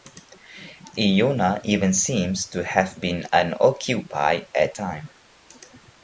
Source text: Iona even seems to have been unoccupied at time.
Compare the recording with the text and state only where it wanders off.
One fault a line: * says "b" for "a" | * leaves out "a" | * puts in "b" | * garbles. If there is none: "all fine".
all fine